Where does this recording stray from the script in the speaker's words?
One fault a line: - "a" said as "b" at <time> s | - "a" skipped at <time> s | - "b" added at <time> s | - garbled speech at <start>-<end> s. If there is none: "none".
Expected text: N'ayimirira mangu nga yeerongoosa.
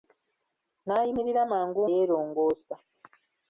- "nga" skipped at 1.8 s